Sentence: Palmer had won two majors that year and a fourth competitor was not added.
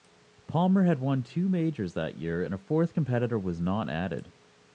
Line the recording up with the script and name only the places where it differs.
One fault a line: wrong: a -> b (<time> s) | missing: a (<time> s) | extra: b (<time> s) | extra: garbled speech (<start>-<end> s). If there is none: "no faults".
no faults